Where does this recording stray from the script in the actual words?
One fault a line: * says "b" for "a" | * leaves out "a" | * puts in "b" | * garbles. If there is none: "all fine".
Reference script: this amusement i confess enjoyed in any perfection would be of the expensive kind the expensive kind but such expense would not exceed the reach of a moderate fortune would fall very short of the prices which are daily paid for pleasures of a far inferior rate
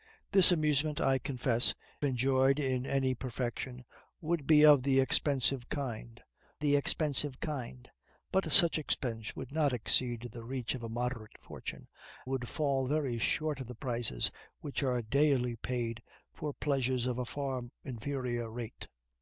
all fine